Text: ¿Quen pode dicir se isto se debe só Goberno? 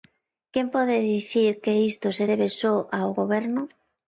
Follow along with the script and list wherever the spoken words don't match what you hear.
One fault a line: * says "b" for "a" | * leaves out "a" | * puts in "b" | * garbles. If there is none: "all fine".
* says "que" for "se"
* puts in "ao"